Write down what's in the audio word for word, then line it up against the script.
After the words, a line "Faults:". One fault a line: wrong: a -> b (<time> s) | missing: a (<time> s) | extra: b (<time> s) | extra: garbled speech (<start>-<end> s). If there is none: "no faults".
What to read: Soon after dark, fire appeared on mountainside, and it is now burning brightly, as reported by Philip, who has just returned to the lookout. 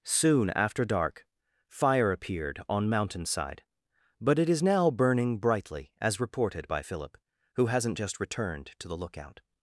Soon after dark, fire appeared on mountainside, but it is now burning brightly, as reported by Philip, who hasn't just returned to the lookout.
Faults:
wrong: and -> but (4.2 s)
wrong: has -> hasn't (7.7 s)